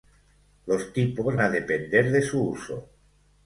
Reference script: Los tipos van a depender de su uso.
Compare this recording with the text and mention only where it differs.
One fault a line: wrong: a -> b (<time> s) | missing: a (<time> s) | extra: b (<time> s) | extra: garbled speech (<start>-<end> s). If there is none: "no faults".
missing: van (1.4 s)